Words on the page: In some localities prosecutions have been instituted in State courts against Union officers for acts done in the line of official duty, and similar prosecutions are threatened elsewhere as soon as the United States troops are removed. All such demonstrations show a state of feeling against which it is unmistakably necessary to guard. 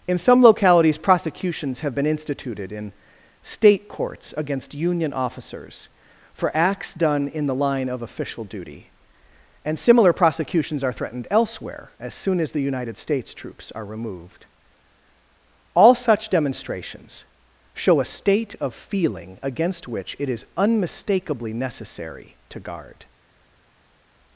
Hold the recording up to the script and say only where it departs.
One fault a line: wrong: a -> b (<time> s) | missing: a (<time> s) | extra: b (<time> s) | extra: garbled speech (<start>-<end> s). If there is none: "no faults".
no faults